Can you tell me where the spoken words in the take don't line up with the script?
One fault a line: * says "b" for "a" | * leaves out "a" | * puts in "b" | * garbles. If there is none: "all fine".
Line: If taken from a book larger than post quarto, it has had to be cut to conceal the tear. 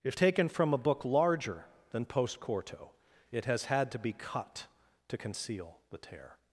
all fine